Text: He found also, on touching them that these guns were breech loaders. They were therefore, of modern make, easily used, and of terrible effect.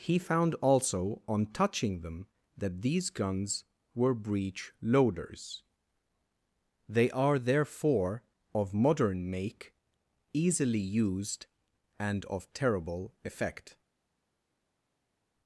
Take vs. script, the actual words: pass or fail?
fail